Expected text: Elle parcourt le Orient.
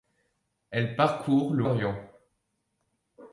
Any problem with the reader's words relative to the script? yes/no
no